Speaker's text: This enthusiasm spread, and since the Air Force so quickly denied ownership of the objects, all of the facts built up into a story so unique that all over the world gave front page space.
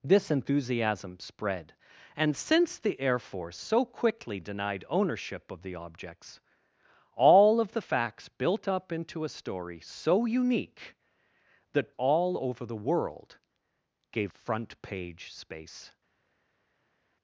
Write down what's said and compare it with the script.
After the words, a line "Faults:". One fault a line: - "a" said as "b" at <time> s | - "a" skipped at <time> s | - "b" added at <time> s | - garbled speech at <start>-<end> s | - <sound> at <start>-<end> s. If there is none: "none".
This enthusiasm spread, and since the Air Force so quickly denied ownership of the objects, all of the facts built up into a story so unique that all over the world gave front page space.
Faults:
none